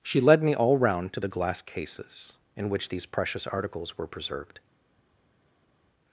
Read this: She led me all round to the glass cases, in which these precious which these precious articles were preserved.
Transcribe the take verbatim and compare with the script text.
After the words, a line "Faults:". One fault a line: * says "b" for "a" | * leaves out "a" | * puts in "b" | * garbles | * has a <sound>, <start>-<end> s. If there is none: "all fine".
She led me all round to the glass cases, in which these precious articles were preserved.
Faults:
* leaves out "which these precious"